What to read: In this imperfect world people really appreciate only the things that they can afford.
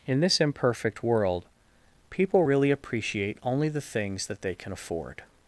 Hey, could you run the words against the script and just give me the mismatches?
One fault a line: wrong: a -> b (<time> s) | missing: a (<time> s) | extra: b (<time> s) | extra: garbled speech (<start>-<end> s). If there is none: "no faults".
no faults